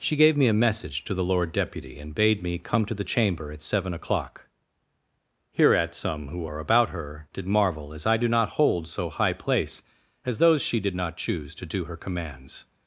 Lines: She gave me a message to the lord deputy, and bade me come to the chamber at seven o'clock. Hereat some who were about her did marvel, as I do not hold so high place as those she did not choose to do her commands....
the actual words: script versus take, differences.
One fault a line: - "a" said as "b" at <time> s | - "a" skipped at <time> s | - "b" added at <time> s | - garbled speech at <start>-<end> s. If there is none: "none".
- "were" said as "are" at 6.4 s